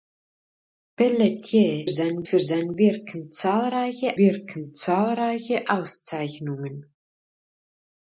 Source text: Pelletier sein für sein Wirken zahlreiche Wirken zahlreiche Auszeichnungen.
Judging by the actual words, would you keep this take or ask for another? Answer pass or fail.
pass